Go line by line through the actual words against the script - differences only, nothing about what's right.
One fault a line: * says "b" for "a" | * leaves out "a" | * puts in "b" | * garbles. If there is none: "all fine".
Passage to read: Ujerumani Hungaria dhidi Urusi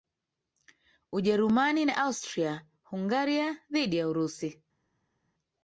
* puts in "na Austria"
* puts in "ya"